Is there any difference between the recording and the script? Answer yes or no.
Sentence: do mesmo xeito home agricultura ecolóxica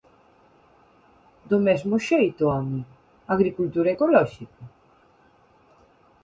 no